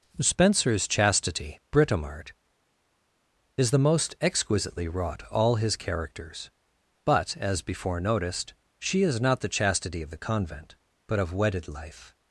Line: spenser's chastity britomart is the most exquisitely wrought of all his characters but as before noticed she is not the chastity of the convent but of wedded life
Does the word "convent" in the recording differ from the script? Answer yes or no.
no